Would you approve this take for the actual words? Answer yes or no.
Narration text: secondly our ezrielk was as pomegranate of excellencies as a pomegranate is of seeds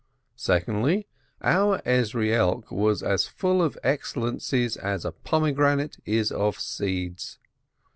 no